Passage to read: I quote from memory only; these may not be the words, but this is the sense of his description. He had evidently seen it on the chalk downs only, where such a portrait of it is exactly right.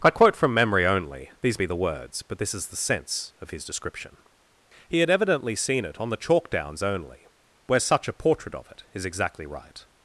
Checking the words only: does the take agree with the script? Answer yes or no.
no